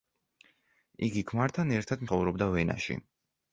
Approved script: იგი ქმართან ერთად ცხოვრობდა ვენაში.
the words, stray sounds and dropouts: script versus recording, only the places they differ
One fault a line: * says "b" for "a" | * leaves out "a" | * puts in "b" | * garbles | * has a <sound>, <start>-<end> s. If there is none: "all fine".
all fine